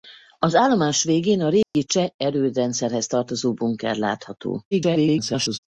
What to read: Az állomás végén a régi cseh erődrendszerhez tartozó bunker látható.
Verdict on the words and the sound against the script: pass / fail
fail